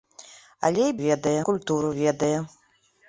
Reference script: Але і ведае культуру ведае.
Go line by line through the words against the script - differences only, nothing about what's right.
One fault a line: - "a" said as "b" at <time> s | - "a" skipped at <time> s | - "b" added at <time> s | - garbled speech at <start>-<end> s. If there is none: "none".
none